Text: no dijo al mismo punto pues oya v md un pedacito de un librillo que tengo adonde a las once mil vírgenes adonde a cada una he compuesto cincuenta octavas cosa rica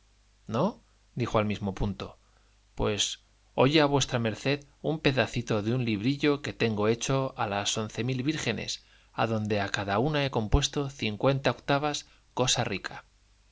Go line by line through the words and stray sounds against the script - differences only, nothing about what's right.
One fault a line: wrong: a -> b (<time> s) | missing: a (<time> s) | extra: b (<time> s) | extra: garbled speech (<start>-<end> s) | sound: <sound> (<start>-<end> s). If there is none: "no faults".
wrong: adonde -> hecho (6.9 s)